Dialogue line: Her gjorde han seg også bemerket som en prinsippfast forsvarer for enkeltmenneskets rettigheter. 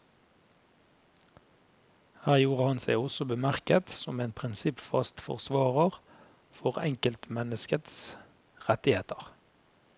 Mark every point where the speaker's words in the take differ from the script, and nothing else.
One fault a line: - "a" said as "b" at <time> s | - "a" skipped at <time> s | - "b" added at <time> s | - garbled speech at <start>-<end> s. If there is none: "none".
none